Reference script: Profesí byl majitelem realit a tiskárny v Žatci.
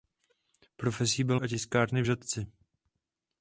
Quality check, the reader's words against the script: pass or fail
fail